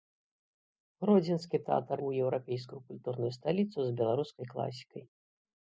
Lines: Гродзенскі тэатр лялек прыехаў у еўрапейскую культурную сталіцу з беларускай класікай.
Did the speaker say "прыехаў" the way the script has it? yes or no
no